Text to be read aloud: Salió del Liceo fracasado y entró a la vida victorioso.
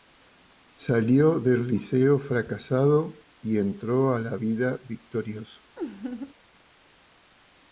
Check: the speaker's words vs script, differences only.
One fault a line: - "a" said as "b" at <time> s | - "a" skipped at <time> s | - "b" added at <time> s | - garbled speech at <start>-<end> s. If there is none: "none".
none